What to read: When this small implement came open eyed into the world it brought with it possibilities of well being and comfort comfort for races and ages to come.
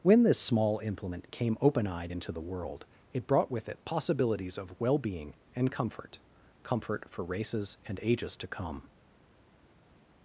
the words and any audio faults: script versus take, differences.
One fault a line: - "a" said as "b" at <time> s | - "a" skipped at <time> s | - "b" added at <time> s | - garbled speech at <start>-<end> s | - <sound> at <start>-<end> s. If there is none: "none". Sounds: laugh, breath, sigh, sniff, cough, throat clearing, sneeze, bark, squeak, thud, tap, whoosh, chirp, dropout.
none